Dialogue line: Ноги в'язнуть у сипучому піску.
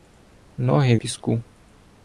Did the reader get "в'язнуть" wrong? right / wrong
wrong